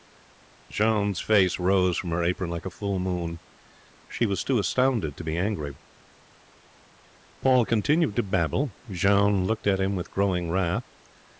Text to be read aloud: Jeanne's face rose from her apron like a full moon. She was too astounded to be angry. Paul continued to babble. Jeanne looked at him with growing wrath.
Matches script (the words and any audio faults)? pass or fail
pass